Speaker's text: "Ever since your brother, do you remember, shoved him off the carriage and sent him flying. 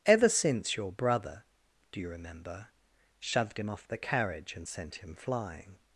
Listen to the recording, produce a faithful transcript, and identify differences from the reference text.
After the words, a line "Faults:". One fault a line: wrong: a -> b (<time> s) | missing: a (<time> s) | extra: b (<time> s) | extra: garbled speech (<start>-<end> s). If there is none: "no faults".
"Ever since your brother, do you remember, shoved him off the carriage and sent him flying.
Faults:
no faults